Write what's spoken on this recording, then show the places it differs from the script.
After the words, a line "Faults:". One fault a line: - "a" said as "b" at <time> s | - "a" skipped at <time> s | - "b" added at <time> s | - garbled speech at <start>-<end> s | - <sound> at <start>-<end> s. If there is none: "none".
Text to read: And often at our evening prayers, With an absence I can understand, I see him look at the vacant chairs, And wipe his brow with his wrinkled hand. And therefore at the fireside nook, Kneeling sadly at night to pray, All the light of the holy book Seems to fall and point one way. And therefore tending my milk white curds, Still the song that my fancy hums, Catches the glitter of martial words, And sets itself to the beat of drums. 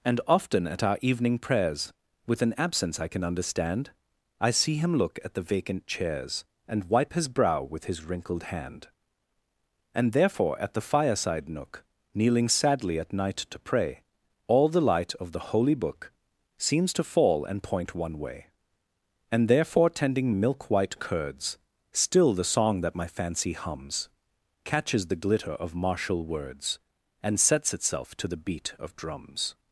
And often at our evening prayers, With an absence I can understand, I see him look at the vacant chairs, And wipe his brow with his wrinkled hand. And therefore at the fireside nook, Kneeling sadly at night to pray, All the light of the holy book Seems to fall and point one way. And therefore tending milk white curds, Still the song that my fancy hums, Catches the glitter of martial words, And sets itself to the beat of drums.
Faults:
- "my" skipped at 20.3 s